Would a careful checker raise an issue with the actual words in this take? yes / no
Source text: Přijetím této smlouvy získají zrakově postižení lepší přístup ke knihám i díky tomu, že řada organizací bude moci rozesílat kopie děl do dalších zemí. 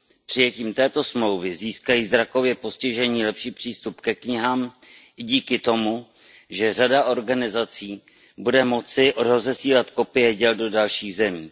no